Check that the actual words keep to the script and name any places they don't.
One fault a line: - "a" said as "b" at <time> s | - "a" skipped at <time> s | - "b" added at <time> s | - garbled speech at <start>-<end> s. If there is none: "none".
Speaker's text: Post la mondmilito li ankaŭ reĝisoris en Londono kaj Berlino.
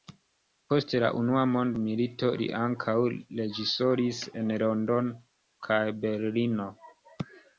- "unua" added at 1.2 s